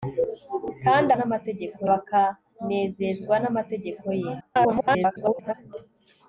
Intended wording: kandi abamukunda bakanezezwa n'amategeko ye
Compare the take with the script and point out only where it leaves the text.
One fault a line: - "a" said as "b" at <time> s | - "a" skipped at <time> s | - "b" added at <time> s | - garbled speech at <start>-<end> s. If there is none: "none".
- "abamukunda" said as "n'amategeko" at 1.1 s
- garbled speech at 4.4-5.5 s